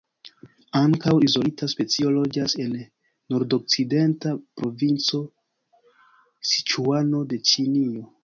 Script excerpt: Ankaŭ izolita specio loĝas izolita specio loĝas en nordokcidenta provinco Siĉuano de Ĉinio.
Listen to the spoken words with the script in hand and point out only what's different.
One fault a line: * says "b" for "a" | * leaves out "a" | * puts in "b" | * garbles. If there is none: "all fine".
* leaves out "izolita specio loĝas"